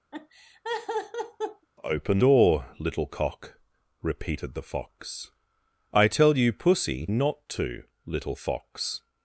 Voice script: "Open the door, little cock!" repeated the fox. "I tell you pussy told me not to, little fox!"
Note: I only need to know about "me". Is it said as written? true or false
false